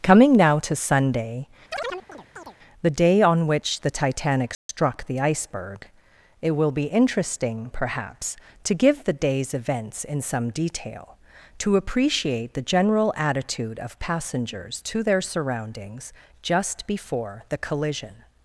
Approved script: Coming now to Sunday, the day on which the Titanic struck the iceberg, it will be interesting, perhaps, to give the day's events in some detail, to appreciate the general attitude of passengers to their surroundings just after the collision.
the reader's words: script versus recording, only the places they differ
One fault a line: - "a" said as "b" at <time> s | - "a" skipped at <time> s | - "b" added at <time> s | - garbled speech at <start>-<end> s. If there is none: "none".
- "after" said as "before" at 16.9 s